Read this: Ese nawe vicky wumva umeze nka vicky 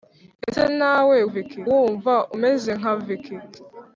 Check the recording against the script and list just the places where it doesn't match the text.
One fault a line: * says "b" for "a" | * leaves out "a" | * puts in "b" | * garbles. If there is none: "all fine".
all fine